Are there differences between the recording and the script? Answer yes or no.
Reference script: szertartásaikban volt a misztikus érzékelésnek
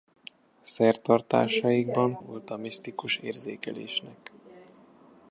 no